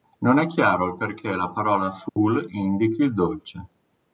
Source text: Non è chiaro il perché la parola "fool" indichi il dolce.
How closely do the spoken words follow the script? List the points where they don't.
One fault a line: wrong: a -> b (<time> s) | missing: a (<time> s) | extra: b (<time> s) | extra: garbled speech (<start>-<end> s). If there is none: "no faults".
no faults